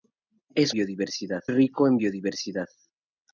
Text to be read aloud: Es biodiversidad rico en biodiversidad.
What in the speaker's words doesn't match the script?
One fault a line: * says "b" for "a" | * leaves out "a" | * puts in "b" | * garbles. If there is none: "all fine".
all fine